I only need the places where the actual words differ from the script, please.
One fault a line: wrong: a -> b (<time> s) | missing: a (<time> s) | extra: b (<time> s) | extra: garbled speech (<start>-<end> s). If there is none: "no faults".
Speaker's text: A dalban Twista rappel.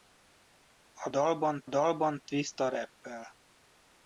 extra: dalban (1.7 s)